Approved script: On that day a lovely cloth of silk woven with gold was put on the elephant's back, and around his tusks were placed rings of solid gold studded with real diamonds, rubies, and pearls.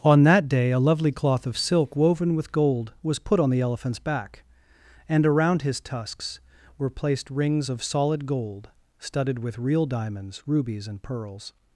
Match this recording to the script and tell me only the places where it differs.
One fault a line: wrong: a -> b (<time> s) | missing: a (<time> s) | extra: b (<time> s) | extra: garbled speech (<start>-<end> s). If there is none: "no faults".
no faults